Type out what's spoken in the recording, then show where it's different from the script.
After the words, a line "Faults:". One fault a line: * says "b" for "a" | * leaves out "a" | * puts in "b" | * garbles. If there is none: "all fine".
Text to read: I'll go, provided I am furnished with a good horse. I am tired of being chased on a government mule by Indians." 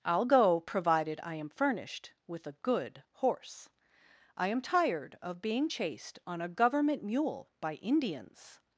I'll go, provided I am furnished with a good horse. I am tired of being chased on a government mule by Indians."
Faults:
all fine